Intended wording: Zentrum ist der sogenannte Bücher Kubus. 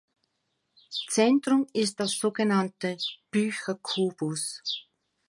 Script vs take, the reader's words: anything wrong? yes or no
no